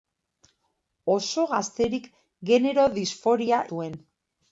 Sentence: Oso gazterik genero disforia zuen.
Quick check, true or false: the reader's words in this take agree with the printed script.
true